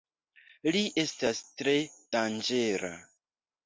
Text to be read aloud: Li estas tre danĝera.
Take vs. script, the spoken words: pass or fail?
pass